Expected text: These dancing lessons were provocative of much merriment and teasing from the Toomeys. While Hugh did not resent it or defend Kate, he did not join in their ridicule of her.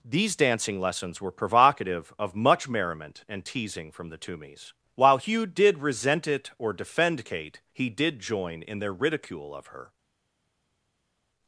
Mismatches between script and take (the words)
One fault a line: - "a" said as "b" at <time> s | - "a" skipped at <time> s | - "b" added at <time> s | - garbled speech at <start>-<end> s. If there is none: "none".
- "not" skipped at 5.8 s
- "not" skipped at 8.2 s